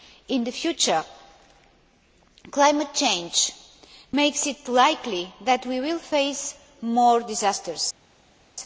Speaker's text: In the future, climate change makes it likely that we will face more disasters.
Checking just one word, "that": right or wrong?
right